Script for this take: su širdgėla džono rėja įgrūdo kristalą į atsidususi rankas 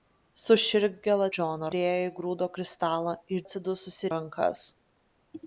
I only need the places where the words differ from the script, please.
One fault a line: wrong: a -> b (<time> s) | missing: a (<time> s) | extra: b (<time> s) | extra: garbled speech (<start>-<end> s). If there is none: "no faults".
no faults